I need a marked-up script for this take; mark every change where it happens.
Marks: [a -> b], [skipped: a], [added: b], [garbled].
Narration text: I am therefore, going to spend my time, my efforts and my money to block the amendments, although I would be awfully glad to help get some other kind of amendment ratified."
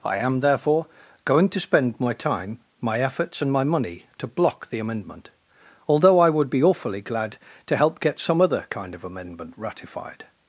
I am therefore, going to spend my time, my efforts and my money to block the [amendments, -> amendment] although I would be awfully glad to help get some other kind of amendment ratified."